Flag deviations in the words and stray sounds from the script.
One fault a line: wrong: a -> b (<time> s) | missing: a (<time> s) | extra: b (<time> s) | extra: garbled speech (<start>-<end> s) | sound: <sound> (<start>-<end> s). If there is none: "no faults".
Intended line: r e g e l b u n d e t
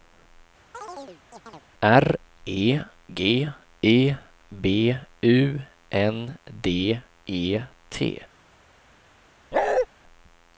sound: chirp (0.7-1.6 s)
missing: l (4.2 s)
sound: bark (9.5-9.9 s)